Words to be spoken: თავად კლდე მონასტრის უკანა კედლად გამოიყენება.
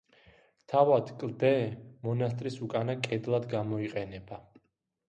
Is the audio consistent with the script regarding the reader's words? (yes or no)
yes